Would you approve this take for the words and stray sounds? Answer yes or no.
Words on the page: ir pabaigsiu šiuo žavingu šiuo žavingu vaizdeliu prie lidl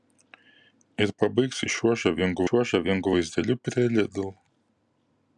yes